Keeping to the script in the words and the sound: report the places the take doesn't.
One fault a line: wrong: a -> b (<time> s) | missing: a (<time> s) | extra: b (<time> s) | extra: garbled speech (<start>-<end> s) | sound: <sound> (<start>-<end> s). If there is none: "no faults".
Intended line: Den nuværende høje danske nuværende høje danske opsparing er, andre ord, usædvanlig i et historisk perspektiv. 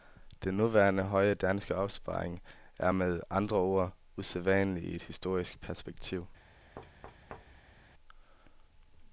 missing: nuværende høje danske (1.8 s)
extra: med (2.9 s)
sound: thud (6.8-7.9 s)